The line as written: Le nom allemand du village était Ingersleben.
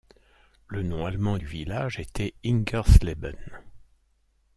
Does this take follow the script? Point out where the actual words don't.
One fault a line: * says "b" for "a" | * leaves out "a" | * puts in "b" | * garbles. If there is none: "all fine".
all fine